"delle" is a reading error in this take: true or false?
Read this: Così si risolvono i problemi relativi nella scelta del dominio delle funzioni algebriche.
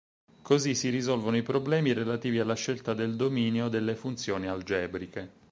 false